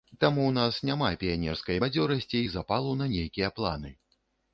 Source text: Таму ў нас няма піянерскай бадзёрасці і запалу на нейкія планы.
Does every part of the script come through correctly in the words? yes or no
yes